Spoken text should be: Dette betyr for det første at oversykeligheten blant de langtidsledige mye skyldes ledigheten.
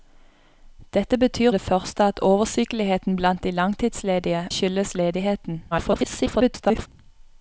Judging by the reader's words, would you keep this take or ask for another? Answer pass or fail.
fail